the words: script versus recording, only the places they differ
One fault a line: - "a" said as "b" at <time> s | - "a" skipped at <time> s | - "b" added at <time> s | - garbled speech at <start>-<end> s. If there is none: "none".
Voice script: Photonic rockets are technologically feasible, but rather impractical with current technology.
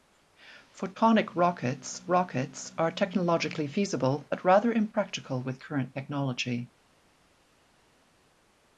- "rockets" added at 2.1 s